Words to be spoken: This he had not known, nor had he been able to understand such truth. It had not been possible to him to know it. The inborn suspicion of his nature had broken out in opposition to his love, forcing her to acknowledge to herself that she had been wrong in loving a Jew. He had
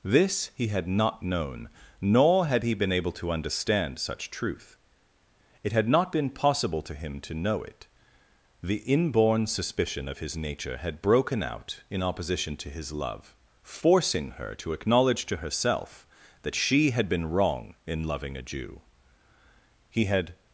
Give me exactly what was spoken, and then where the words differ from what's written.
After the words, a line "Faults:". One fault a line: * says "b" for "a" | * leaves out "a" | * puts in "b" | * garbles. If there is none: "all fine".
This he had not known, nor had he been able to understand such truth. It had not been possible to him to know it. The inborn suspicion of his nature had broken out in opposition to his love, forcing her to acknowledge to herself that she had been wrong in loving a Jew. He had
Faults:
all fine